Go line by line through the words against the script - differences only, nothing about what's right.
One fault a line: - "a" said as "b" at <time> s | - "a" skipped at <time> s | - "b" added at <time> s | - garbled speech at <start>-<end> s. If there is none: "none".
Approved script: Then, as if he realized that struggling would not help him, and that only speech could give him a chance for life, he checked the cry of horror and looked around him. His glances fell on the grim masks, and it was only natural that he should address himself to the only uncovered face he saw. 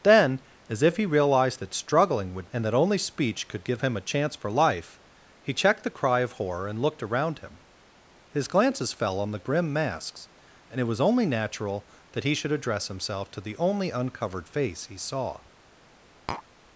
- "not help him" skipped at 2.5 s